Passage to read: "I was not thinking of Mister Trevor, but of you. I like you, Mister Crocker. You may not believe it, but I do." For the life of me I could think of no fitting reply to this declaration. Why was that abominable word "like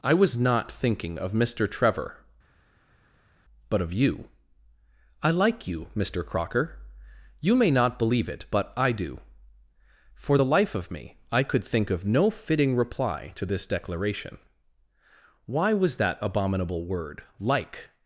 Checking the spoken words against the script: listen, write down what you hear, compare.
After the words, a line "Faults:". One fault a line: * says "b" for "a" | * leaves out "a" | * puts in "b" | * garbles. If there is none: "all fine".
"I was not thinking of Mister Trevor, but of you. I like you, Mister Crocker. You may not believe it, but I do." For the life of me I could think of no fitting reply to this declaration. Why was that abominable word "like
Faults:
all fine